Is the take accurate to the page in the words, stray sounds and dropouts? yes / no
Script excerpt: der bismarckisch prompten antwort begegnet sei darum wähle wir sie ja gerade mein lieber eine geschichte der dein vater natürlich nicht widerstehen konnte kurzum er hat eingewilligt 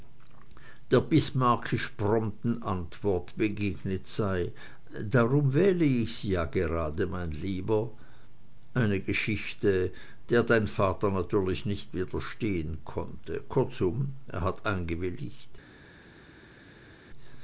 no